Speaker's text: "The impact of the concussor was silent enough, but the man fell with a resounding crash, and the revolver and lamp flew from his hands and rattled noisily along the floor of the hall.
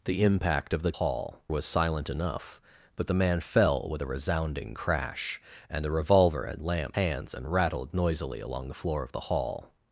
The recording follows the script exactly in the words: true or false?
false